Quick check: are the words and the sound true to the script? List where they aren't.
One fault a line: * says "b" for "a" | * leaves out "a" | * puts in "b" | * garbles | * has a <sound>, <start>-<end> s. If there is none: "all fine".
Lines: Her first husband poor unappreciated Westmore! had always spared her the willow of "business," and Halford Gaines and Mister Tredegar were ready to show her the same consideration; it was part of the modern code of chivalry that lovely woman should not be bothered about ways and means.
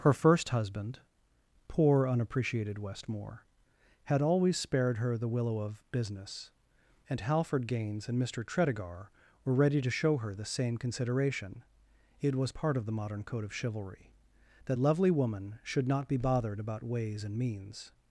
all fine